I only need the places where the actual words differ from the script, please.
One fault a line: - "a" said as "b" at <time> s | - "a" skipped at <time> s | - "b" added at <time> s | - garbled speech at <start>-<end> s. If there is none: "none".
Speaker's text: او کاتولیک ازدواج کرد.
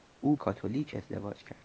none